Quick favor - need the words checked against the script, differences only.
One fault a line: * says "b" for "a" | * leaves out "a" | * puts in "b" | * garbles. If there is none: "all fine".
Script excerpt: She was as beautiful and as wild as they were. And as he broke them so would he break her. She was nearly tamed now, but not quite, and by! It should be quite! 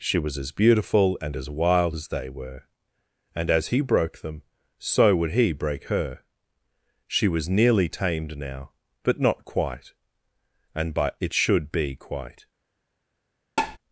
all fine